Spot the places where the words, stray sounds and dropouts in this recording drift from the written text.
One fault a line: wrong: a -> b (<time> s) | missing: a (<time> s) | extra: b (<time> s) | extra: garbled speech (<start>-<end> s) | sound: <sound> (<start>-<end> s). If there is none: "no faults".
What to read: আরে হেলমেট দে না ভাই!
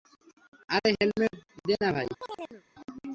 sound: chirp (2.2-2.6 s)